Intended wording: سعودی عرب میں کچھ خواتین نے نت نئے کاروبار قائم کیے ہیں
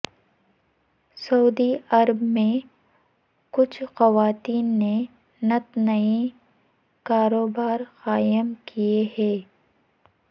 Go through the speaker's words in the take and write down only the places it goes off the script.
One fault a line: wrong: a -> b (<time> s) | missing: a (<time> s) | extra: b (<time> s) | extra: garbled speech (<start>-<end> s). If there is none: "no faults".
no faults